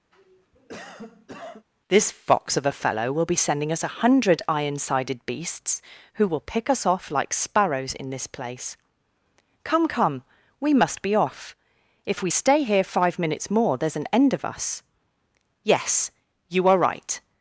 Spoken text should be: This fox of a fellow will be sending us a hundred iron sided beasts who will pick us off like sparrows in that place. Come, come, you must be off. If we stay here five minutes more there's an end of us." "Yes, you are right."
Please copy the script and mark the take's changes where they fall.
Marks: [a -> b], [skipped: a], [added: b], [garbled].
This fox of a fellow will be sending us a hundred iron sided beasts who will pick us off like sparrows in [that -> this] place. Come, come, [you -> we] must be off. If we stay here five minutes more there's an end of us." "Yes, you are right."